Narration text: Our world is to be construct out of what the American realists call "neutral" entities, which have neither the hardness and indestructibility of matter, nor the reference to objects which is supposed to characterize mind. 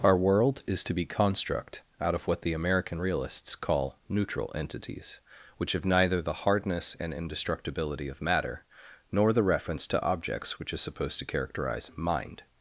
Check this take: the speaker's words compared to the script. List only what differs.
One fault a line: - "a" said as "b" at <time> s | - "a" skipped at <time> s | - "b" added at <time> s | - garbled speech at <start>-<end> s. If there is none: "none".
none